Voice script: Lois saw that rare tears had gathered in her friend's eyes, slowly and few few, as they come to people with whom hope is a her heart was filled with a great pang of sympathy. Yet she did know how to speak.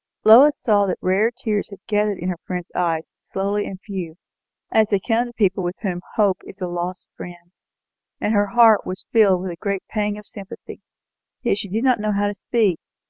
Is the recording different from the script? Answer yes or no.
yes